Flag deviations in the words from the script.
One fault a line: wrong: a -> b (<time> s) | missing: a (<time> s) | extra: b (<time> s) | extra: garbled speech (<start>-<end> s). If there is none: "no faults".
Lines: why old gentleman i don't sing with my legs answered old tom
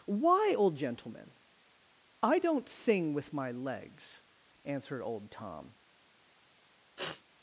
no faults